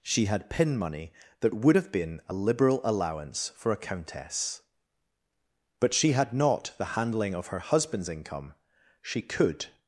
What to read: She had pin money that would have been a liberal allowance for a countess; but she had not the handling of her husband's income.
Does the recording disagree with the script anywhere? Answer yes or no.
yes